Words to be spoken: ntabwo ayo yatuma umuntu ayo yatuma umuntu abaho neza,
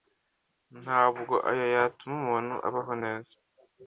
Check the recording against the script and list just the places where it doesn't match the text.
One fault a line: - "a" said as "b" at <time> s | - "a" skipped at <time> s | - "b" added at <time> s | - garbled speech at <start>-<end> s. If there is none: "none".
- "ayo yatuma umuntu" skipped at 2.5 s